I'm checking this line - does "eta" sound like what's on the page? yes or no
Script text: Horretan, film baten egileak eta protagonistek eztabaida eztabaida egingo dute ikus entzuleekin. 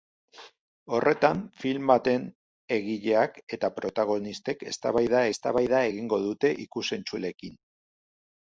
yes